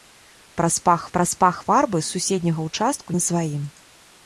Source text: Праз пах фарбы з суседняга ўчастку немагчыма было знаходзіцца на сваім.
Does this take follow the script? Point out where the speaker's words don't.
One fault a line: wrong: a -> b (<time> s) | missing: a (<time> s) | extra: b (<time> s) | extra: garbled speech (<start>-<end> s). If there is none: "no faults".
extra: праз пах (1.2 s)
missing: немагчыма было знаходзіцца (3.1 s)